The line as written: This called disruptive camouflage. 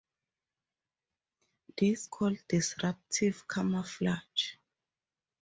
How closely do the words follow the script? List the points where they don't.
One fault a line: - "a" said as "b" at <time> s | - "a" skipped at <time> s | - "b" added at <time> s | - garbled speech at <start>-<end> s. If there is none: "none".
none